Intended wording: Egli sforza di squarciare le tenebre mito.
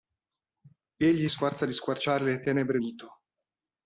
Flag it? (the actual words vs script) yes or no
no